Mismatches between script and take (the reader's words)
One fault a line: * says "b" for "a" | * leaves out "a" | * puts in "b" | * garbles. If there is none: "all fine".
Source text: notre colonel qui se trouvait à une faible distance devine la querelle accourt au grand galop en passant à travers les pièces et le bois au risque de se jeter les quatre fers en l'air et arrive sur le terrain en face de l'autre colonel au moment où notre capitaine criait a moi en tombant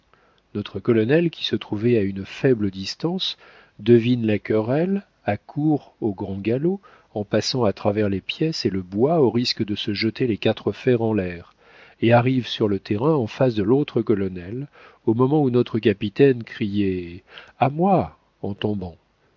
all fine